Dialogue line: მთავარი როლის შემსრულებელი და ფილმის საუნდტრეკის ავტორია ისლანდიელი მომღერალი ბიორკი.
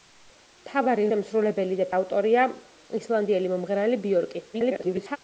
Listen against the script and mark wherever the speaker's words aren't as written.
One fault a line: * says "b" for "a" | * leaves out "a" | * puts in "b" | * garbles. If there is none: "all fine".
* leaves out "როლის"
* leaves out "ფილმის საუნდტრეკის"
* garbles